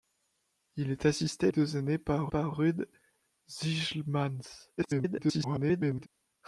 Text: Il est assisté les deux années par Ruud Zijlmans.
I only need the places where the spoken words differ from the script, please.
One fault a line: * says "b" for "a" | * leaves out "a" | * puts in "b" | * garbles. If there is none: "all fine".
* leaves out "les"
* puts in "par"
* garbles